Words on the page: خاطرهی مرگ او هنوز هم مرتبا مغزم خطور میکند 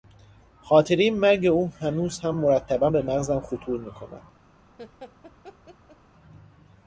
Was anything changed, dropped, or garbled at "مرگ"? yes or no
no